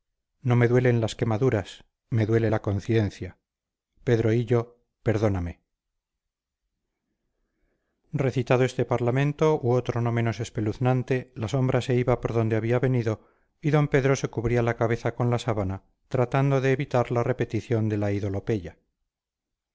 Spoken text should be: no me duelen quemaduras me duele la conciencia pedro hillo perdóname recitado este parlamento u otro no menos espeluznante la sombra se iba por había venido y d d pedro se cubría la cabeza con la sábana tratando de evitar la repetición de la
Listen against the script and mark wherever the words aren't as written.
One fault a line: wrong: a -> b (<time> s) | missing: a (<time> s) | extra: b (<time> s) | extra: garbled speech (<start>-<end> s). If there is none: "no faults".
extra: las (1.0 s)
extra: donde (12.3 s)
missing: d (13.9 s)